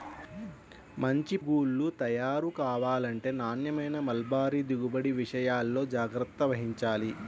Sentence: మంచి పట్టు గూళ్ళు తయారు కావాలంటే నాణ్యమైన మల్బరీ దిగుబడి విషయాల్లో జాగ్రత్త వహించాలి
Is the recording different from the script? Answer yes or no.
yes